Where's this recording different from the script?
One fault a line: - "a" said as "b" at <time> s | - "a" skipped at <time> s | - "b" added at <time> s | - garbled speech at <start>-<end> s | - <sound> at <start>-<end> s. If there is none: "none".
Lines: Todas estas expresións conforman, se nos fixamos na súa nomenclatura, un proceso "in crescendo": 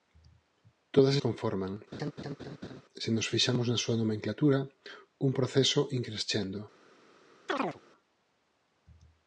- "estas expresións" skipped at 1.1 s
- laugh at 1.9-2.8 s
- chirp at 7.5-7.8 s